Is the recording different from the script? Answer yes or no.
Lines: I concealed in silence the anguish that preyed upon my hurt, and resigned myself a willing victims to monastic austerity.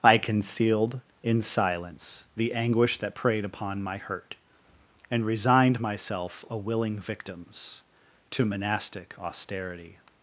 no